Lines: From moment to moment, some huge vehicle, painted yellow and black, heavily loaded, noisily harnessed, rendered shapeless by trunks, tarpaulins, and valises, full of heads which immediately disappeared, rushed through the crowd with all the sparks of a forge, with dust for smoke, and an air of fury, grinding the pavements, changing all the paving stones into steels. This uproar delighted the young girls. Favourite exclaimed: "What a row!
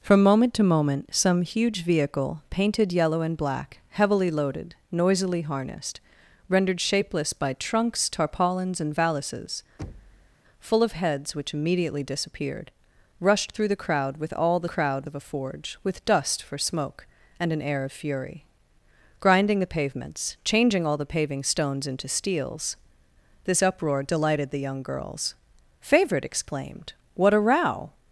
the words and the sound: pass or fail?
fail